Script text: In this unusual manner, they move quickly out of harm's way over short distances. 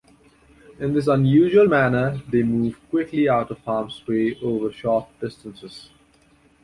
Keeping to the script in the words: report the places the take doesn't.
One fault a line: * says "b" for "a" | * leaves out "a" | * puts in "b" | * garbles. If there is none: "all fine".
all fine